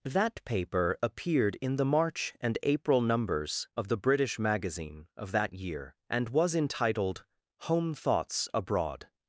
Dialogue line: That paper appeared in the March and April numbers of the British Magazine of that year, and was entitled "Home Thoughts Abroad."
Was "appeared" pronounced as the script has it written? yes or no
yes